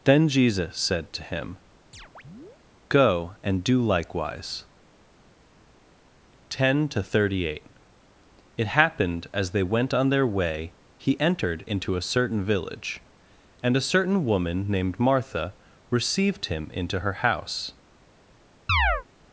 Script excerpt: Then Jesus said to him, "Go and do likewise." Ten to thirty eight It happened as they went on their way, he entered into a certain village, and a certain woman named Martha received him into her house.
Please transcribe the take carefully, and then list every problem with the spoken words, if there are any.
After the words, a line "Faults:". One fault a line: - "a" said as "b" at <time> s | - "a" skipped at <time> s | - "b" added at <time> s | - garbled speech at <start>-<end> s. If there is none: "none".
Then Jesus said to him, "Go and do likewise." Ten to thirty eight It happened as they went on their way, he entered into a certain village, and a certain woman named Martha received him into her house.
Faults:
none